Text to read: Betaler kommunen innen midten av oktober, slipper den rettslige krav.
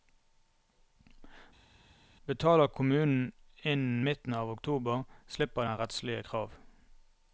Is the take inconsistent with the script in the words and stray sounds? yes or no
no